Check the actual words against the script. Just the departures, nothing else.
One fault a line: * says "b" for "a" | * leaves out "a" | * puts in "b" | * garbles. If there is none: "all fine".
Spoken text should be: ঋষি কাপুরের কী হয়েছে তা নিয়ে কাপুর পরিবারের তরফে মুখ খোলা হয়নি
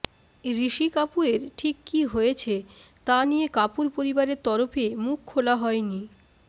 * puts in "ঠিক"